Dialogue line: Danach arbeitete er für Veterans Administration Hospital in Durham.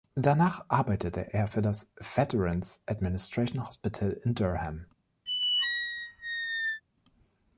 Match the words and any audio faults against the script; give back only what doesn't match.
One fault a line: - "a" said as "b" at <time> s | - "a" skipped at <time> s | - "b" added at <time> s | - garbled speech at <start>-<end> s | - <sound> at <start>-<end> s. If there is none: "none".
- "das" added at 1.6 s
- squeak at 5.3-6.8 s